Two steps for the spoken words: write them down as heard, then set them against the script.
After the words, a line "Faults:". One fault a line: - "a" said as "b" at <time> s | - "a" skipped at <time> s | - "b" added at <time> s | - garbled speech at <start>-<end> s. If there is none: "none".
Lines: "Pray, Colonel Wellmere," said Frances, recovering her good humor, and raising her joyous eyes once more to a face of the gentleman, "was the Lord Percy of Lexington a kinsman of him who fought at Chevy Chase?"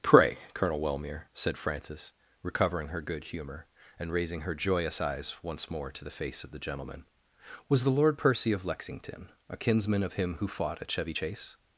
"Pray, Colonel Wellmere," said Frances, recovering her good humor, and raising her joyous eyes once more to the face of the gentleman, "was the Lord Percy of Lexington a kinsman of him who fought at Chevy Chase?"
Faults:
- "a" said as "the" at 6.0 s